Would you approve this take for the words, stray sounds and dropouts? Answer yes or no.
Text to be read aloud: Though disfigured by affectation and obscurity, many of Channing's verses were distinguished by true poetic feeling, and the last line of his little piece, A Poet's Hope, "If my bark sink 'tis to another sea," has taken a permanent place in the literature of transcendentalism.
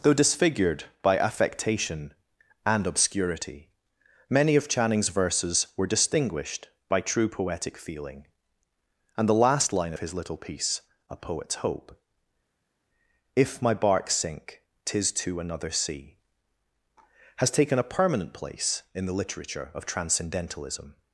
yes